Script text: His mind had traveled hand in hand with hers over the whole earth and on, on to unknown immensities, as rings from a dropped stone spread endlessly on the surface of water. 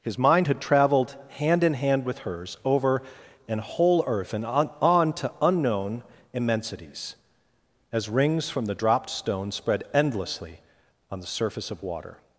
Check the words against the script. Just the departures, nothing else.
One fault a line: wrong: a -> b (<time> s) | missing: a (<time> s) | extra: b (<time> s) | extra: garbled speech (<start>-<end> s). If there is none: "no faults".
wrong: the -> an (3.5 s)
wrong: a -> the (8.6 s)